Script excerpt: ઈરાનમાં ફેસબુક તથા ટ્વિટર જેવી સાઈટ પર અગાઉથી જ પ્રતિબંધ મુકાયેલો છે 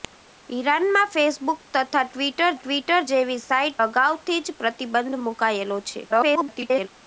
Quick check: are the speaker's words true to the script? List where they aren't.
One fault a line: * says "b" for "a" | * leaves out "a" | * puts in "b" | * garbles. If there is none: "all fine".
* puts in "ટ્વિટર"
* leaves out "પર"
* garbles